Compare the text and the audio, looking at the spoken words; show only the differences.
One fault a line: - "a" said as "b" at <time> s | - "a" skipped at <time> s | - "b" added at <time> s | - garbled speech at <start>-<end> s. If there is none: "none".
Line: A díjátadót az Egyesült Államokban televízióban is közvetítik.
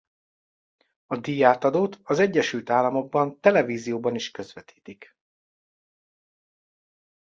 none